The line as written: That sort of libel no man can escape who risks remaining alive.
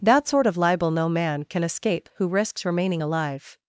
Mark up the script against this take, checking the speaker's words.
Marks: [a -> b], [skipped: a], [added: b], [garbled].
That sort of libel no man can escape who risks remaining alive.